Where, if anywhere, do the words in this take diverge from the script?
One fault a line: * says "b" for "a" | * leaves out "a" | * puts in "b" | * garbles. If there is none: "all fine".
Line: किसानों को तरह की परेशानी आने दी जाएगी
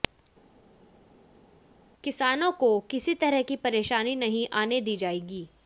* puts in "किसी"
* puts in "नहीं"